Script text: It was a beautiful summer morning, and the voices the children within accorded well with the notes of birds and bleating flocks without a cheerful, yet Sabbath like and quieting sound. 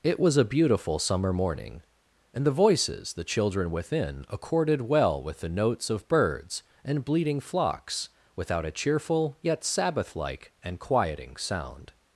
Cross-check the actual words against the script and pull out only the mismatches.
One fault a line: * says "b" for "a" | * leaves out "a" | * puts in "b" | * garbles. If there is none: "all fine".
all fine